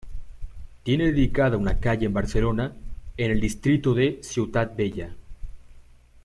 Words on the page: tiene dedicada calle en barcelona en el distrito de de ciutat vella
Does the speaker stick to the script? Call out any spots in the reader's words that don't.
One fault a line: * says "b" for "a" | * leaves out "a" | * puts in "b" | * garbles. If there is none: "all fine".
* puts in "una"
* leaves out "de"